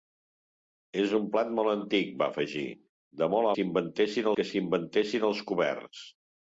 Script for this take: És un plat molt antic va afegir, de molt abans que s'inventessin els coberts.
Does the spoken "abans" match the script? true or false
false